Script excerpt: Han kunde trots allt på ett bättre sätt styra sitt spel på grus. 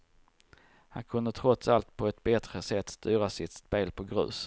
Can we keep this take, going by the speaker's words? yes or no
yes